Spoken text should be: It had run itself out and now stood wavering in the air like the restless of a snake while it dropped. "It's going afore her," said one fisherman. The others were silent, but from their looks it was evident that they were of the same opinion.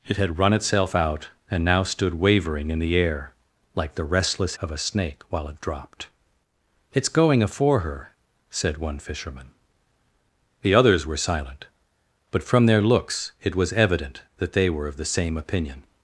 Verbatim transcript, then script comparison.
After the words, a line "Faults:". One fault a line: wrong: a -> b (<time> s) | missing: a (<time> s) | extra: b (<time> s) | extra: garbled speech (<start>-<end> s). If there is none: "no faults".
It had run itself out and now stood wavering in the air like the restless of a snake while it dropped. "It's going afore her," said one fisherman. The others were silent, but from their looks it was evident that they were of the same opinion.
Faults:
no faults